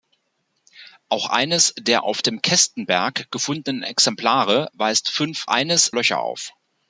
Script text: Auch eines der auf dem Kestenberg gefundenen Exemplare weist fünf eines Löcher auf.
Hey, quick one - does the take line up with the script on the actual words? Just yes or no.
yes